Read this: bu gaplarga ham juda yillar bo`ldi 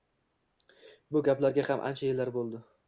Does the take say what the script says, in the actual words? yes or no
no